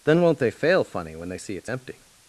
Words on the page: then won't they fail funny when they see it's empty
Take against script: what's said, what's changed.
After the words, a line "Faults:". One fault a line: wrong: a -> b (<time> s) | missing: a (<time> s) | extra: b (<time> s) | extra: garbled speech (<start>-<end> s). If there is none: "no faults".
then won't they fail funny when they see it's empty
Faults:
no faults